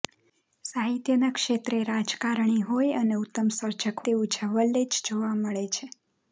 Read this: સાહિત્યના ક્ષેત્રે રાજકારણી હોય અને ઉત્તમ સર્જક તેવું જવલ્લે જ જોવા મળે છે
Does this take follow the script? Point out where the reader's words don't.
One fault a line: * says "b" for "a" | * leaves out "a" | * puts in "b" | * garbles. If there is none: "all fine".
all fine